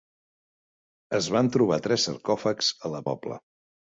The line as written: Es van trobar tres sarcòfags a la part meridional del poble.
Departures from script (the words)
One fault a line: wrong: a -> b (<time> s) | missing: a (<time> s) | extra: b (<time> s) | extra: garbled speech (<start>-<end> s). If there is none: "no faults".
missing: part meridional del (3.1 s)